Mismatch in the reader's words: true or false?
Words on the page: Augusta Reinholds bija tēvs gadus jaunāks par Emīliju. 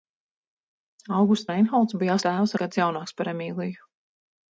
false